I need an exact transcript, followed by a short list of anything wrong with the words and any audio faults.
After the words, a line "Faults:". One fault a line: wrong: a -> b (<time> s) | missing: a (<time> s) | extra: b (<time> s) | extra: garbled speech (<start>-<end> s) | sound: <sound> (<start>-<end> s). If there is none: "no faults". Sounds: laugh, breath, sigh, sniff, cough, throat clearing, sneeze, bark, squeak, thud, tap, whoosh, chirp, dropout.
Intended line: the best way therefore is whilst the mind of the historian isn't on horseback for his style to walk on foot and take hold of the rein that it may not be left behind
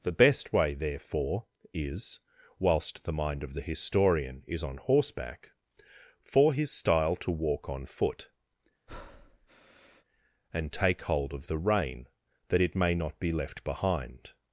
the best way therefore is whilst the mind of the historian is on horseback for his style to walk on foot and take hold of the rein that it may not be left behind
Faults:
wrong: isn't -> is (4.5 s)
sound: breath (8.9-10.0 s)